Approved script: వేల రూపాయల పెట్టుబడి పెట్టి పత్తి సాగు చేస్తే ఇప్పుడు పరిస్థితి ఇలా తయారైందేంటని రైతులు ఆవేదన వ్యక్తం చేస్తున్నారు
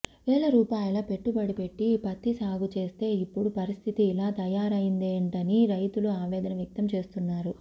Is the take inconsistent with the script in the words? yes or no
no